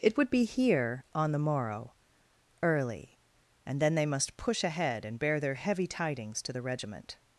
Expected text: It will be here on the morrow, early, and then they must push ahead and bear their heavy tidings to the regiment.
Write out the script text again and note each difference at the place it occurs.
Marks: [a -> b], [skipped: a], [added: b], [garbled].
It [will -> would] be here on the morrow, early, and then they must push ahead and bear their heavy tidings to the regiment.